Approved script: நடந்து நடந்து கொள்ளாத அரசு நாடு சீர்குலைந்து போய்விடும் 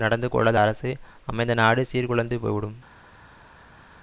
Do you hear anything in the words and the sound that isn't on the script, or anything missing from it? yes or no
yes